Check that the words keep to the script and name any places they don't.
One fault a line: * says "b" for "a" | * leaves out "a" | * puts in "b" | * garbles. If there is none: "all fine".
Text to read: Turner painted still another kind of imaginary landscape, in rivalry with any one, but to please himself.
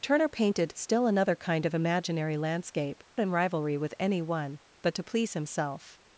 all fine